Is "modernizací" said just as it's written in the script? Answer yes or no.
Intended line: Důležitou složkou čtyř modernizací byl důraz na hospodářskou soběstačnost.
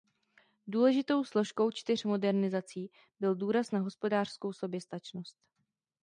yes